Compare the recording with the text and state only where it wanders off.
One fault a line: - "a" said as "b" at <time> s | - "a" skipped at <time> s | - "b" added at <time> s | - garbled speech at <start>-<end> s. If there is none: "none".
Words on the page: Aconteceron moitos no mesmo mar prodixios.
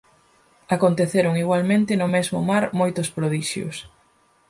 - "moitos" said as "igualmente" at 1.4 s
- "moitos" added at 2.8 s